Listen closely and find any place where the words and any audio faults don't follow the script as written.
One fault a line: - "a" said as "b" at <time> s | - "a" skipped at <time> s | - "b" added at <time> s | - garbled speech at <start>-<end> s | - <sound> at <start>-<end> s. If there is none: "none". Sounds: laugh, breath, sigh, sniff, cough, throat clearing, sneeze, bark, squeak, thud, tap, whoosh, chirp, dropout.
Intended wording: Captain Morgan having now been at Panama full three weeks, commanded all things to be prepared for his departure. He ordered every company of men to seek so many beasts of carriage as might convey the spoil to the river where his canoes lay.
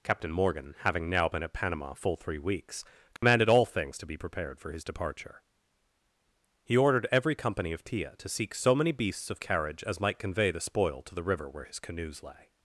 - dropout at 3.2-3.2 s
- "men" said as "tia" at 7.8 s